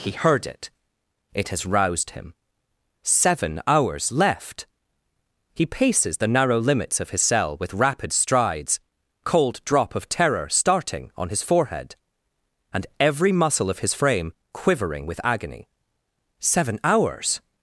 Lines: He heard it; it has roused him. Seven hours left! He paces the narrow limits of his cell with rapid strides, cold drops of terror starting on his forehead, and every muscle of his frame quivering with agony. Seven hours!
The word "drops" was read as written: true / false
false